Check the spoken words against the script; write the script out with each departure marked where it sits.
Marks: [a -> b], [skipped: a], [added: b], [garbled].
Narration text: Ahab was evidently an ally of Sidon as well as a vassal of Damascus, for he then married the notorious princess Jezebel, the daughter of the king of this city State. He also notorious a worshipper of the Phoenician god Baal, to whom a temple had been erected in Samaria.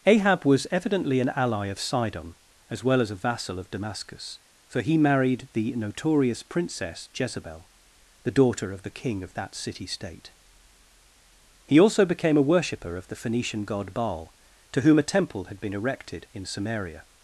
Ahab was evidently an ally of Sidon as well as a vassal of Damascus, for he [skipped: then] married the notorious princess Jezebel, the daughter of the king of [this -> that] city State. He also [notorious -> became] a worshipper of the Phoenician god Baal, to whom a temple had been erected in Samaria.